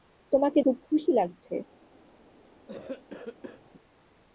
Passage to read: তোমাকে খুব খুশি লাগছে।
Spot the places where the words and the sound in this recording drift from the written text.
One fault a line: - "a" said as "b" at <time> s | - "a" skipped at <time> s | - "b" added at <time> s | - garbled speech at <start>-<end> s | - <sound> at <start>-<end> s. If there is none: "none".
- cough at 2.7-3.7 s